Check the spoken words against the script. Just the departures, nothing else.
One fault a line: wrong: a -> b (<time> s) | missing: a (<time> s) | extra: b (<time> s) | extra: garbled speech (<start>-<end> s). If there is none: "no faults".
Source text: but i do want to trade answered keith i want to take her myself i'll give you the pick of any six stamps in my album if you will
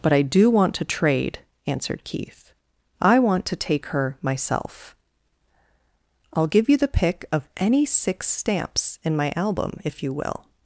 no faults